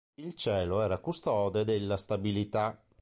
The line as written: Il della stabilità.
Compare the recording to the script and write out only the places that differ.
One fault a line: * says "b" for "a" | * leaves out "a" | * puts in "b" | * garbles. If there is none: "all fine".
* puts in "cielo era custode"